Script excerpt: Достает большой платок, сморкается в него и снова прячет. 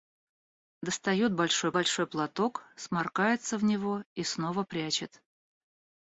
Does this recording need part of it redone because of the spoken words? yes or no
yes